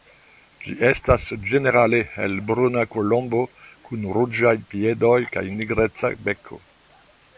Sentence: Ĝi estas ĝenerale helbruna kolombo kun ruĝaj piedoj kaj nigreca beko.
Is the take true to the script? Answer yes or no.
yes